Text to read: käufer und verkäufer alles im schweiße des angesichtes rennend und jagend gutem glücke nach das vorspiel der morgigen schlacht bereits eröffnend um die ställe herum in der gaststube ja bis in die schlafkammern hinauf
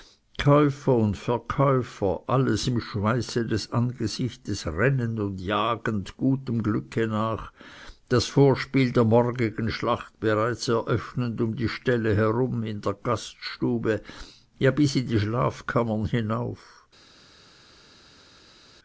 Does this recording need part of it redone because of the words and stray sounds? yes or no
no